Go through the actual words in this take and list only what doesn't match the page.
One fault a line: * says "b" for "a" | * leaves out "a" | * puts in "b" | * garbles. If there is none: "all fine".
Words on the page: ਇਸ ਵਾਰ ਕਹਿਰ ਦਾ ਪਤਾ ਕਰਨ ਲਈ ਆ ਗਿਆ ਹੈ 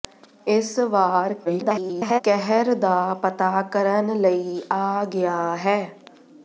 * garbles